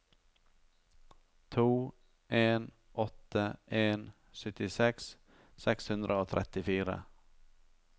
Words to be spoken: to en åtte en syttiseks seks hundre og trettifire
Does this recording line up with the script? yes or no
yes